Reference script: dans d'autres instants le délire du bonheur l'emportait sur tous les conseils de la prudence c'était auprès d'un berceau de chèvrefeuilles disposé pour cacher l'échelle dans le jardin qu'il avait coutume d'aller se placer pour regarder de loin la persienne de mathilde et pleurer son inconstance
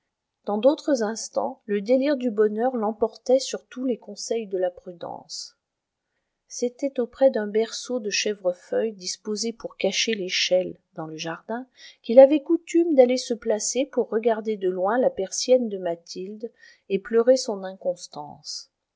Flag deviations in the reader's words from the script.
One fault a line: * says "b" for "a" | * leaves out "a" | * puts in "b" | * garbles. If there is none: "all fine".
all fine